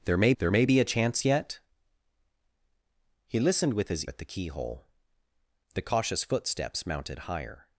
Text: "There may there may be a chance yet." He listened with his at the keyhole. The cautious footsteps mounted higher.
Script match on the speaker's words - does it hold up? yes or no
yes